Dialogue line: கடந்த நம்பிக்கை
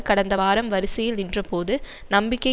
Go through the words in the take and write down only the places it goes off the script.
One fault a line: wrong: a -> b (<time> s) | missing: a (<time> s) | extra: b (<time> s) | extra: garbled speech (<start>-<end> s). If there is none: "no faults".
extra: வாரம் வரிசையில் நின்றபோது (0.3 s)